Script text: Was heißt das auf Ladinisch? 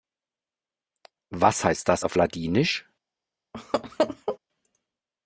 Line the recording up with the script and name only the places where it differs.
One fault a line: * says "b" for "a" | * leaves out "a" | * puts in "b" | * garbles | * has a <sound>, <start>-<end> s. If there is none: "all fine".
* has a laugh, 3.5-4.4 s